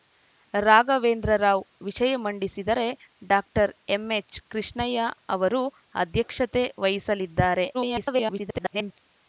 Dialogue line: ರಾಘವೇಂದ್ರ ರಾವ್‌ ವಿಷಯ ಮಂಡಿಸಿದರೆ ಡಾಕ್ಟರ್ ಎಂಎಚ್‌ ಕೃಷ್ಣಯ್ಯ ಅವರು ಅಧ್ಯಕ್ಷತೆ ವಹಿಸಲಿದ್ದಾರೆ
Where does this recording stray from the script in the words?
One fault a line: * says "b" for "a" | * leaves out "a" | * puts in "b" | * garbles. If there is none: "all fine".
* garbles